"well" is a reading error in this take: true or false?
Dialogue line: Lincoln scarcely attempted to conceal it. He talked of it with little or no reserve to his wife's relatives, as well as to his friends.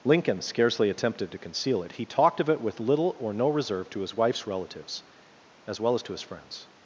false